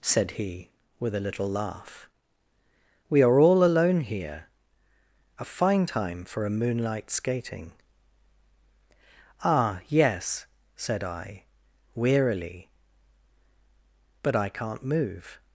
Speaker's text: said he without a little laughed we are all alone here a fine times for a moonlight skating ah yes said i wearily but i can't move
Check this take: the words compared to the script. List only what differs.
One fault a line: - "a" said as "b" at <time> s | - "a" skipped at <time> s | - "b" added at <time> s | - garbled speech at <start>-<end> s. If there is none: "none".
- "without" said as "with" at 1.0 s
- "laughed" said as "laugh" at 1.5 s
- "times" said as "time" at 5.9 s